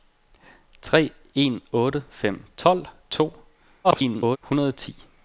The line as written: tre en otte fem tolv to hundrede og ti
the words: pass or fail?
fail